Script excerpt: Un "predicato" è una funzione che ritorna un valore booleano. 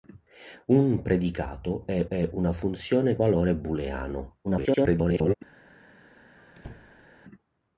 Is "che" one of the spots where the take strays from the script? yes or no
yes